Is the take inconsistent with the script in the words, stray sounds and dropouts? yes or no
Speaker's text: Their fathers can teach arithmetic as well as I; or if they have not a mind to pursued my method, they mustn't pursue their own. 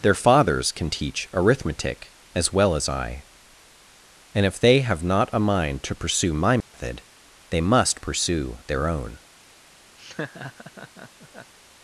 yes